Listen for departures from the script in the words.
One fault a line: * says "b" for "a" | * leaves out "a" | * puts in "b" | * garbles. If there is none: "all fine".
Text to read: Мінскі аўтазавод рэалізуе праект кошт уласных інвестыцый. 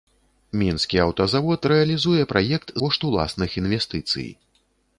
all fine